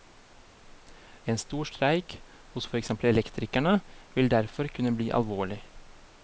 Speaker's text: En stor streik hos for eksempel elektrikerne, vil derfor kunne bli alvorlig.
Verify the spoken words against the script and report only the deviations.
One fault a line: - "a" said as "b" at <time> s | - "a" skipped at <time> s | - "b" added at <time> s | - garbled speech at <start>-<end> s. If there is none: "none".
none